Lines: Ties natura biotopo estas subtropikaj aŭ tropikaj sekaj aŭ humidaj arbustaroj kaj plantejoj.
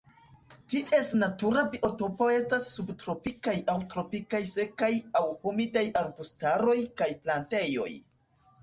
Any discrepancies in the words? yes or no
no